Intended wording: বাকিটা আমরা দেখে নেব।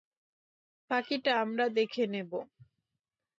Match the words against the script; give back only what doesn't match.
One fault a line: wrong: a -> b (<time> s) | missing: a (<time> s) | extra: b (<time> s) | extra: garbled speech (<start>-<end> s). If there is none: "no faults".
no faults